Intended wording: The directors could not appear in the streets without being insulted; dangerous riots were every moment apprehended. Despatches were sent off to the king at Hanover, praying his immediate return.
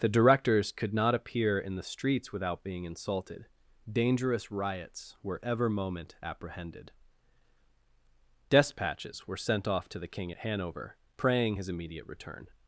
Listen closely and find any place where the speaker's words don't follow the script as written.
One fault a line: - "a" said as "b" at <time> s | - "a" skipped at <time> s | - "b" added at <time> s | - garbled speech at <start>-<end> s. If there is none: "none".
- "every" said as "ever" at 5.4 s